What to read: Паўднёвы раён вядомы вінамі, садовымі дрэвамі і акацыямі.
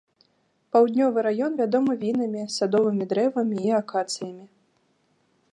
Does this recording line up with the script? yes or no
yes